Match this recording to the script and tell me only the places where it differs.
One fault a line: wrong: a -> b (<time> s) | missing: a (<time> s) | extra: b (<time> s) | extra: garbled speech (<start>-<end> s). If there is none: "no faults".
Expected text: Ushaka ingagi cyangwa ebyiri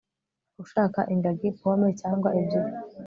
extra: pome (1.6 s)